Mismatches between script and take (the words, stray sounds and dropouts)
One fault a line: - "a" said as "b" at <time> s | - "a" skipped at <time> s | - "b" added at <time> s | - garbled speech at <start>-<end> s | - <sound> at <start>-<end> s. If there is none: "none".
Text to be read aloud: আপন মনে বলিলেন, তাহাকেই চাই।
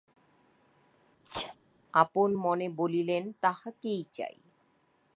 - sneeze at 1.3-1.6 s